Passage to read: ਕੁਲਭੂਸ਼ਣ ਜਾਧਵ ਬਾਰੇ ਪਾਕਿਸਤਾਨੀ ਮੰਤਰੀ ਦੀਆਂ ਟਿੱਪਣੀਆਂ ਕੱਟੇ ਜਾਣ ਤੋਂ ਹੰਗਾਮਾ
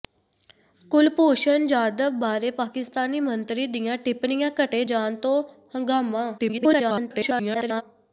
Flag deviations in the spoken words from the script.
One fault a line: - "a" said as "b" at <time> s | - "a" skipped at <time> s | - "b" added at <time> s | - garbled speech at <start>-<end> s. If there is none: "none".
- garbled speech at 6.4-7.8 s